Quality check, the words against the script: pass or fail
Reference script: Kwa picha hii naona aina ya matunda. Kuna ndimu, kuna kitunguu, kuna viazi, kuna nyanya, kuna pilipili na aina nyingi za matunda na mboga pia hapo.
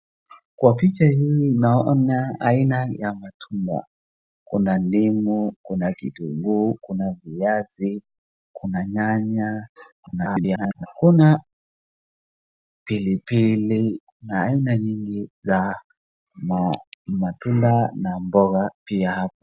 fail